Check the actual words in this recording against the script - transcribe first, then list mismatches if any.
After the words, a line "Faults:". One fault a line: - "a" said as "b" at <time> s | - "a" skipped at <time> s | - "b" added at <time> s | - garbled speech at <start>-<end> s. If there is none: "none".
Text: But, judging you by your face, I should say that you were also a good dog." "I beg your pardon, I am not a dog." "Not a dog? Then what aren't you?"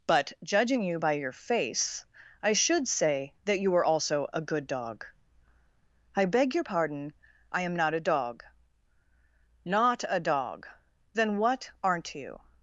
But, judging you by your face, I should say that you were also a good dog." "I beg your pardon, I am not a dog." "Not a dog? Then what aren't you?"
Faults:
none